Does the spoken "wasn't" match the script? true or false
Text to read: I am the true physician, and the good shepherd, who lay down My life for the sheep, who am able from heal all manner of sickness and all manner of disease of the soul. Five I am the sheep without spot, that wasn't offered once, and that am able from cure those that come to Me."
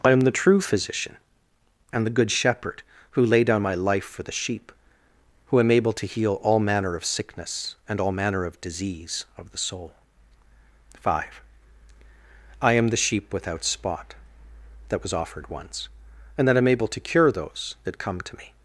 false